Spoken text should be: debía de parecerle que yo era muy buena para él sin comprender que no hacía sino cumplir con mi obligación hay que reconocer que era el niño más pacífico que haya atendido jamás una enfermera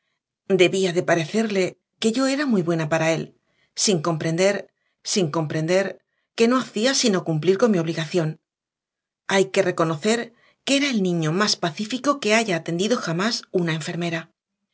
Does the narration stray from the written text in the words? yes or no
yes